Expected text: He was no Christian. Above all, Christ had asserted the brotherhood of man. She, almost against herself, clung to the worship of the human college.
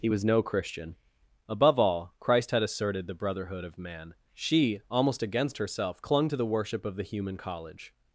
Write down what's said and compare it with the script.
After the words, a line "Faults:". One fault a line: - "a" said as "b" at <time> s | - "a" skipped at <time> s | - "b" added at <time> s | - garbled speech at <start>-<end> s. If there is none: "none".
He was no Christian. Above all, Christ had asserted the brotherhood of man. She, almost against herself, clung to the worship of the human college.
Faults:
none